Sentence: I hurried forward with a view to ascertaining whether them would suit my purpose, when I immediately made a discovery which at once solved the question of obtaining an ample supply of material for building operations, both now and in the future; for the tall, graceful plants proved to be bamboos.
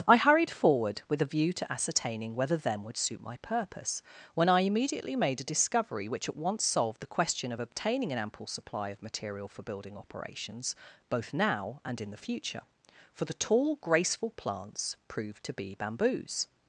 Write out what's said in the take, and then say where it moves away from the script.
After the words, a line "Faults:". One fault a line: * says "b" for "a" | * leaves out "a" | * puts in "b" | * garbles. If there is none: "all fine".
I hurried forward with a view to ascertaining whether them would suit my purpose, when I immediately made a discovery which at once solved the question of obtaining an ample supply of material for building operations, both now and in the future; for the tall, graceful plants proved to be bamboos.
Faults:
all fine